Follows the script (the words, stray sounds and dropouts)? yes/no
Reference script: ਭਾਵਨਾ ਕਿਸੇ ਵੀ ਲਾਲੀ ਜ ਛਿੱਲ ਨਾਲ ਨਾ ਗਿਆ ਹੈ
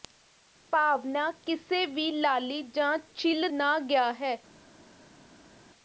no